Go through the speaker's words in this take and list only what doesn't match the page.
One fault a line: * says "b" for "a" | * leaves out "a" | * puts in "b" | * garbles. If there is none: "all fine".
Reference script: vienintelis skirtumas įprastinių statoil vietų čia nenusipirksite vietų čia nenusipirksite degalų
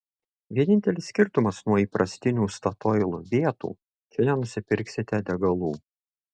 * puts in "nuo"
* leaves out "vietų čia nenusipirksite"